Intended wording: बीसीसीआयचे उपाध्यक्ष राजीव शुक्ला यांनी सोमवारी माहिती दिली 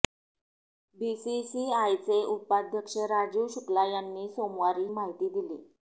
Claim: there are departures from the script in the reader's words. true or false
false